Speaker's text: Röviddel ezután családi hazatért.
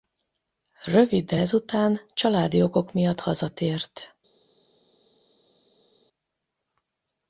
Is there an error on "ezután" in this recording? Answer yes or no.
no